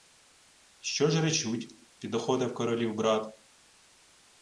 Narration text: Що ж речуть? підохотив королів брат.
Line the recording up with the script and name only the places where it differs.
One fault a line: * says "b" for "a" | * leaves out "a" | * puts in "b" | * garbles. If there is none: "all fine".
all fine